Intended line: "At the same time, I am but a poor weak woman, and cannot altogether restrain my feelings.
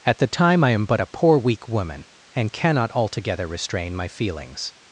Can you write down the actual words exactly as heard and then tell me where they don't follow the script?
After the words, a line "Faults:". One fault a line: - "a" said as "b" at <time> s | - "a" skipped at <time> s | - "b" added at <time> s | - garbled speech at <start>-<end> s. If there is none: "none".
"At the time, I am but a poor weak woman, and cannot altogether restrain my feelings.
Faults:
- "same" skipped at 0.3 s